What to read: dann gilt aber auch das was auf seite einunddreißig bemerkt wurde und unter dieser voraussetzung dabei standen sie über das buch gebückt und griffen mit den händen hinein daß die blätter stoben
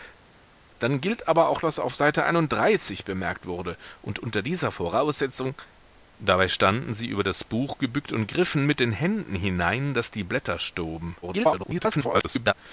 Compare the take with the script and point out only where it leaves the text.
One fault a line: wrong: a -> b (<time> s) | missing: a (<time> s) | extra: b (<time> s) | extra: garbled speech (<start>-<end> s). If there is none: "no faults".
missing: das (1.6 s)
extra: garbled speech (11.2-12.5 s)